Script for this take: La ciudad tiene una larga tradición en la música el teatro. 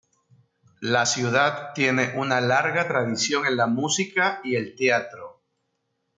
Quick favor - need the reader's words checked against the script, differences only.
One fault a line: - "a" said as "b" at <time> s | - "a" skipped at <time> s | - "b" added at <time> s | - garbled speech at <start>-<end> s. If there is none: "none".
- "y" added at 4.4 s